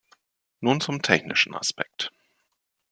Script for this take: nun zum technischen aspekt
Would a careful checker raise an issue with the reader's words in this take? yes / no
no